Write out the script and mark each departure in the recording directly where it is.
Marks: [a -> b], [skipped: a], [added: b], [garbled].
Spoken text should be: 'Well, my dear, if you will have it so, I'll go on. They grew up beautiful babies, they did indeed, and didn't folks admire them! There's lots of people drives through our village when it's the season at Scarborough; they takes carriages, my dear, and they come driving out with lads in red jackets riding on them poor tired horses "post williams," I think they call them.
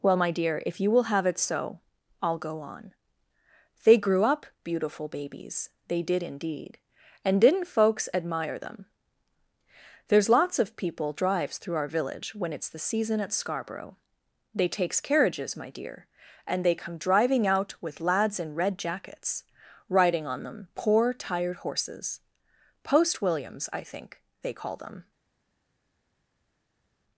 'Well, my dear, if you will have it so, I'll go on. They grew up beautiful babies, they did indeed, and didn't folks admire them! There's lots of people drives through our village when it's the season at Scarborough; they takes carriages, my dear, and they come driving out with lads in red jackets riding on them poor tired horses "post williams," I think they call them.